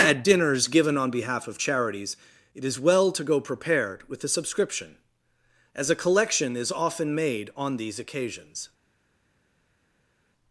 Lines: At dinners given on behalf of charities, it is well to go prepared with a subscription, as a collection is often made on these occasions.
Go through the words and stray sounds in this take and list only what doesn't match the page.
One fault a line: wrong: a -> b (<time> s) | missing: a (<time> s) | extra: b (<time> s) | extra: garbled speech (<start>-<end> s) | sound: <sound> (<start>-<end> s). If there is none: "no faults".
no faults